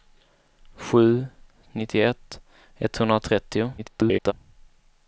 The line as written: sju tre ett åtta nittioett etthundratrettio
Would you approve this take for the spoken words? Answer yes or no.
no